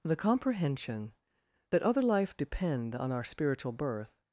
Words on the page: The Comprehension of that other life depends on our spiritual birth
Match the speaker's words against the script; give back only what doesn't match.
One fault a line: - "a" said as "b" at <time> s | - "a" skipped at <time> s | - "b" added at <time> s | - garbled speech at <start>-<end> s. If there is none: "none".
- "of" skipped at 1.1 s
- "depends" said as "depend" at 2.4 s